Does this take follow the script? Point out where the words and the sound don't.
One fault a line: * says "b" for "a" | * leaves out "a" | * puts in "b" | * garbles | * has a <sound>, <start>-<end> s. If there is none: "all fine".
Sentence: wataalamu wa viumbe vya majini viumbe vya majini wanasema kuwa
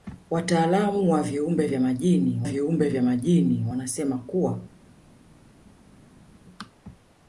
all fine